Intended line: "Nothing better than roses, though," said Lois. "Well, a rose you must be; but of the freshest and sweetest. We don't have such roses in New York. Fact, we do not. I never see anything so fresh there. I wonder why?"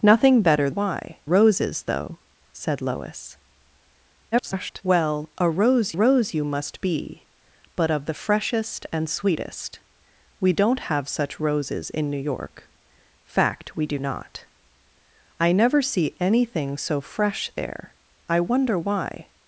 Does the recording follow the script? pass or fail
fail